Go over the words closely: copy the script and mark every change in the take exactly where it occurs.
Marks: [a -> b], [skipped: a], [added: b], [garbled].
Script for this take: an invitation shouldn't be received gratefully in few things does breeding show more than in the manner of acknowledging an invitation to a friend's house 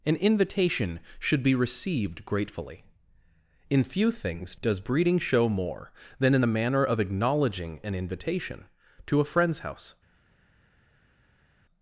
an invitation [shouldn't -> should] be received gratefully in few things does breeding show more than in the manner of acknowledging an invitation to a friend's house